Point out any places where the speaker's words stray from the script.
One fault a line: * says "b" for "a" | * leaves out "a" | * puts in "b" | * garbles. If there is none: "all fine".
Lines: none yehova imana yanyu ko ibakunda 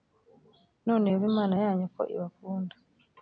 all fine